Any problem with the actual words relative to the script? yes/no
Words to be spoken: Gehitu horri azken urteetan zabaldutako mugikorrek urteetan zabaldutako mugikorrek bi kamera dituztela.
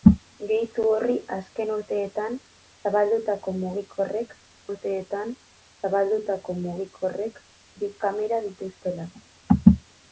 no